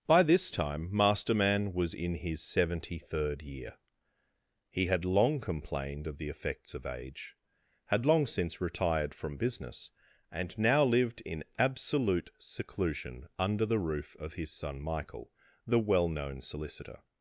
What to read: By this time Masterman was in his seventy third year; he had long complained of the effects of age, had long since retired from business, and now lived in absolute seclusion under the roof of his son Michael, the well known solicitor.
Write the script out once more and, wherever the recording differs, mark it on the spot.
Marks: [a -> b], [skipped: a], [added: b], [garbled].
By this time Masterman was in his seventy third year; he had long complained of the effects of age, had long since retired from business, and now lived in absolute seclusion under the roof of his son Michael, the well known solicitor.